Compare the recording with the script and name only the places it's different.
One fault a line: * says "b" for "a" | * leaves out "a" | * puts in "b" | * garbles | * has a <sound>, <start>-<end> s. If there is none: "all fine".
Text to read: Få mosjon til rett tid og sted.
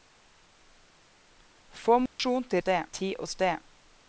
* has a dropout, 2.1-2.2 s
* says "sted" for "rett"